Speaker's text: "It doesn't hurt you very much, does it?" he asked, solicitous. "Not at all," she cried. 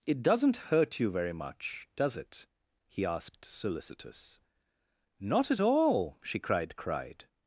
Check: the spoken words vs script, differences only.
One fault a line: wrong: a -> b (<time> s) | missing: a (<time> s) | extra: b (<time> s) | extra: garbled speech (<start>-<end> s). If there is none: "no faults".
extra: cried (6.8 s)